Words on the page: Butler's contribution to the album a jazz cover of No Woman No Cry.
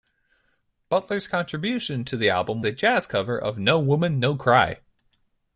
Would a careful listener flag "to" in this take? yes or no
no